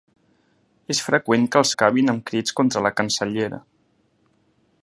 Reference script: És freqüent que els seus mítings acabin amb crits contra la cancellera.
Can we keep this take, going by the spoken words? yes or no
no